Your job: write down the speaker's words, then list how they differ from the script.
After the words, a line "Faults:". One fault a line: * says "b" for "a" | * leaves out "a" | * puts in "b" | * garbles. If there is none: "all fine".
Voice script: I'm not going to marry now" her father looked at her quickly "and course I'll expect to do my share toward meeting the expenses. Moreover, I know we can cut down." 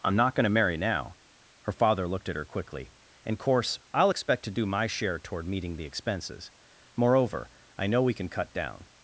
I'm not going to marry now" her father looked at her quickly "and course I'll expect to do my share toward meeting the expenses. Moreover, I know we can cut down."
Faults:
all fine